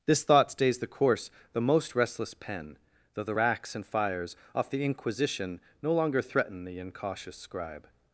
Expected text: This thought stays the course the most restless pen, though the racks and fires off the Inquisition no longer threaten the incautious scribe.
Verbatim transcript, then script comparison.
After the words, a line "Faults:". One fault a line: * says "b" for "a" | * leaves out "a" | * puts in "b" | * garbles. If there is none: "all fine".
This thought stays the course the most restless pen, though the racks and fires off the Inquisition no longer threaten the incautious scribe.
Faults:
all fine